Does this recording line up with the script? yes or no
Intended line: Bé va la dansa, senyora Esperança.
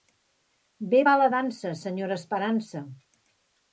yes